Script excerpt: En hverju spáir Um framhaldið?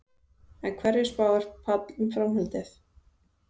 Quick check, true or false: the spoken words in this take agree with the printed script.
false